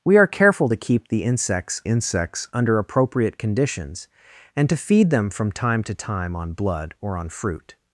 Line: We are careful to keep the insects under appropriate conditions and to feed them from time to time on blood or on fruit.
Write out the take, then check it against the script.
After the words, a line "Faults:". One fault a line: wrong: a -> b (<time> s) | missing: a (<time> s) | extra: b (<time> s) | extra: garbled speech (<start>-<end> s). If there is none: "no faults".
We are careful to keep the insects insects under appropriate conditions and to feed them from time to time on blood or on fruit.
Faults:
extra: insects (1.9 s)